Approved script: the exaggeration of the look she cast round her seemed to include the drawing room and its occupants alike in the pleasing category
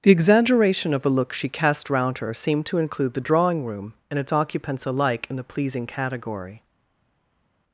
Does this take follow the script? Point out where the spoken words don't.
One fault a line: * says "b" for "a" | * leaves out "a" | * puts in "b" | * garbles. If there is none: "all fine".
* says "a" for "the"